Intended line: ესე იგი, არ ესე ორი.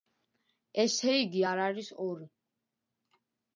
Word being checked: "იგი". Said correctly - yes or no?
yes